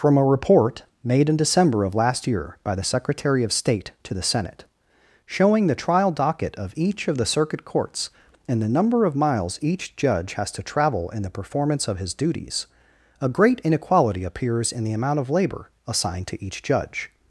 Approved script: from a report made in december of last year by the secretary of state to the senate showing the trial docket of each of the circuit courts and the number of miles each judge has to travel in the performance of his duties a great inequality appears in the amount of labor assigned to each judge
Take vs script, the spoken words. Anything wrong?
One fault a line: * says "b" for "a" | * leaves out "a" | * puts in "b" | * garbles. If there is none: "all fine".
all fine